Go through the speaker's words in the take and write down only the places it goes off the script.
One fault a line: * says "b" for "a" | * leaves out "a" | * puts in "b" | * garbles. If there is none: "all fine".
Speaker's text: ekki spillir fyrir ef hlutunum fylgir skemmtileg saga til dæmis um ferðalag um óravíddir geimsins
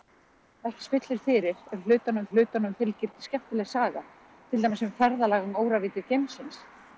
* puts in "hlutunum"